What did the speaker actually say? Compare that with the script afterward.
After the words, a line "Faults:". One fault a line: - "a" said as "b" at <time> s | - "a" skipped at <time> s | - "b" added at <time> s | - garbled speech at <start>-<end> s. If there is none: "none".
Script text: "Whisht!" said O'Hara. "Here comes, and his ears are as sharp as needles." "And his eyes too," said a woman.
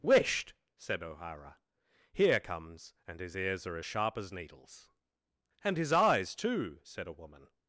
"Whisht!" said O'Hara. "Here comes, and his ears are as sharp as needles." "And his eyes too," said a woman.
Faults:
none